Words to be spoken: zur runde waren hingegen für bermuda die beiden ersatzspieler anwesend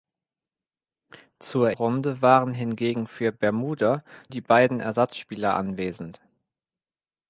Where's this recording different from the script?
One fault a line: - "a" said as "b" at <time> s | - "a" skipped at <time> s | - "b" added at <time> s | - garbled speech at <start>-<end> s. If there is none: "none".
none